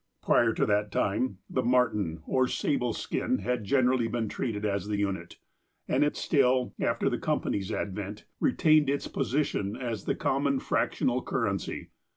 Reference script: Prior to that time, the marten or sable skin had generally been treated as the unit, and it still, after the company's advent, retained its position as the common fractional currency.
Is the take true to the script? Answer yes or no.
yes